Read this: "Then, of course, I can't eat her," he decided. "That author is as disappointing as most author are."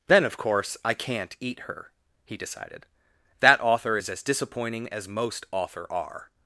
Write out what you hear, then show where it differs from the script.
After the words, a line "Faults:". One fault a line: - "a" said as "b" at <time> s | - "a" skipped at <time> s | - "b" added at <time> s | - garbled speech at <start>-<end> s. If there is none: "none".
"Then, of course, I can't eat her," he decided. "That author is as disappointing as most author are."
Faults:
none